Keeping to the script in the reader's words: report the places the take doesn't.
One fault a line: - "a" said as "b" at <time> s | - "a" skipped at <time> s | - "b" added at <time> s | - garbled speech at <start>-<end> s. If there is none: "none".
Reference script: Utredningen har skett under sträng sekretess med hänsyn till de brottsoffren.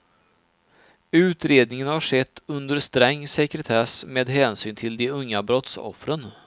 - "unga" added at 5.1 s